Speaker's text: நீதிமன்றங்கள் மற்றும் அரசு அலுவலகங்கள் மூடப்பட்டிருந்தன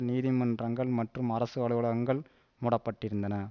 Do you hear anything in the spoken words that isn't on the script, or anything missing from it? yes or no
no